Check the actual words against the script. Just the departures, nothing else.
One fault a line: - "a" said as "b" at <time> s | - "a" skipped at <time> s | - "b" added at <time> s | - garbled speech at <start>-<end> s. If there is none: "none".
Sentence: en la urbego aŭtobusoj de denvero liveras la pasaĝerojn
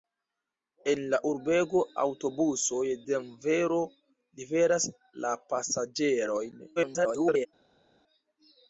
- "de" skipped at 2.8 s
- garbled speech at 6.8-7.5 s